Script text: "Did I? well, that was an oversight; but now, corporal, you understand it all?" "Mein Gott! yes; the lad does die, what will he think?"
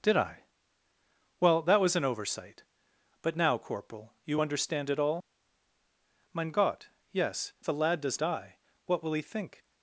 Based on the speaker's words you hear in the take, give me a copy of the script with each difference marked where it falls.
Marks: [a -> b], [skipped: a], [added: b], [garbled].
"Did I? well, that was an oversight; but now, corporal, you understand it all?" "Mein Gott! yes; the lad does die, what will he think?"